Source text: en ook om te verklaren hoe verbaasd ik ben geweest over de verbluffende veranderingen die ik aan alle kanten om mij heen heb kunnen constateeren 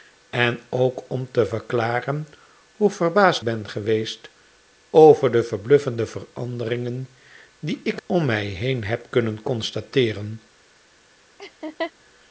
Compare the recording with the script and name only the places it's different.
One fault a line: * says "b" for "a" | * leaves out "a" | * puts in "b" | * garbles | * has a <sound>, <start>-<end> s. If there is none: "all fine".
* leaves out "ik"
* leaves out "aan alle kanten"
* has a laugh, 11.4-11.9 s